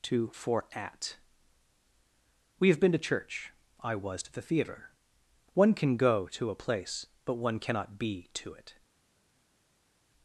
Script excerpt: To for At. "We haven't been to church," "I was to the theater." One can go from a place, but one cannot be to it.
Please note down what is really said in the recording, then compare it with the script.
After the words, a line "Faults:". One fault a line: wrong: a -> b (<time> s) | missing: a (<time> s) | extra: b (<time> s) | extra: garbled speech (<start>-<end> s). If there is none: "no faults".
To for At. "We have been to church," "I was to the theater." One can go to a place, but one cannot be to it.
Faults:
wrong: haven't -> have (2.7 s)
wrong: from -> to (6.3 s)